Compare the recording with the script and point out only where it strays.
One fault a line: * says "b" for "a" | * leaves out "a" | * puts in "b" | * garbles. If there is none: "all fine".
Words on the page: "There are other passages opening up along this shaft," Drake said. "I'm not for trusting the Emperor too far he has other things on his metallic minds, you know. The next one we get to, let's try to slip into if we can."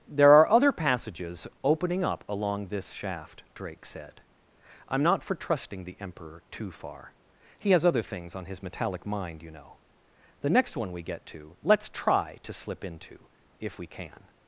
* says "mind" for "minds"